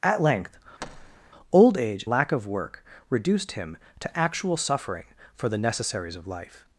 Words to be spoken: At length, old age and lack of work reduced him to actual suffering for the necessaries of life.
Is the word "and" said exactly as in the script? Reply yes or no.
no